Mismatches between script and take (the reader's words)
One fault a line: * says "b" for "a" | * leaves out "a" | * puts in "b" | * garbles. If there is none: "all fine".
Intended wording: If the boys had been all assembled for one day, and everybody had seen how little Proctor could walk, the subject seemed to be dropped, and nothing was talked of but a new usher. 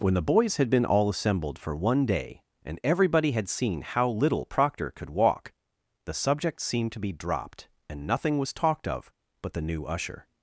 * says "When" for "If"
* says "the" for "a"